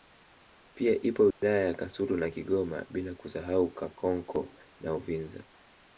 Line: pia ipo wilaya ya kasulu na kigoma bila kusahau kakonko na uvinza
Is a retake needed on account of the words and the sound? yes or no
yes